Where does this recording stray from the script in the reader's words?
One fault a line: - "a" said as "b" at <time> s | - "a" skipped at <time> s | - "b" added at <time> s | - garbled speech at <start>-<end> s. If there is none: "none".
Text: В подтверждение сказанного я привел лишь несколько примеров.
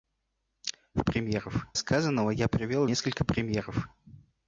- "подтверждение" said as "примеров" at 1.0 s
- "лишь" skipped at 2.9 s